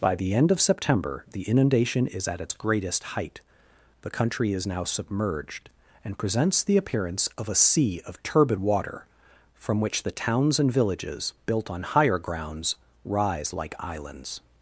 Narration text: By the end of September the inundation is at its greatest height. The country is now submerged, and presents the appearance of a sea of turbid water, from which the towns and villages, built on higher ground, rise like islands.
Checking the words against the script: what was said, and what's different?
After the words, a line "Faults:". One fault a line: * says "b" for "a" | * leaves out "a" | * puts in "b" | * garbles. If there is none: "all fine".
By the end of September the inundation is at its greatest height. The country is now submerged, and presents the appearance of a sea of turbid water, from which the towns and villages, built on higher grounds, rise like islands.
Faults:
* says "grounds" for "ground"